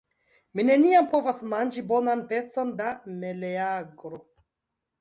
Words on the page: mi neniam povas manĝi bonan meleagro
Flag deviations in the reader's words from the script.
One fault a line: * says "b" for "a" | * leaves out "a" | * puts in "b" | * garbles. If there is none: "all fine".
* puts in "pecon da"